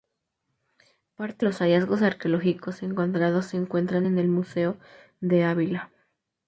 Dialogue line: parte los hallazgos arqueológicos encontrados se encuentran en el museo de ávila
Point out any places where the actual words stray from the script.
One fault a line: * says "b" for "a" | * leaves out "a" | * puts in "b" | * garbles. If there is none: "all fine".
all fine